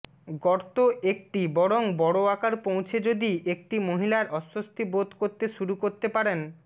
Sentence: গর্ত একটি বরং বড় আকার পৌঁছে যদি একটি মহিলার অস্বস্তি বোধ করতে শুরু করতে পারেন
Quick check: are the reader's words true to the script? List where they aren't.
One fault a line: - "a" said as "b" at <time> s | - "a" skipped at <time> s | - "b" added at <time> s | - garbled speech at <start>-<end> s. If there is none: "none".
none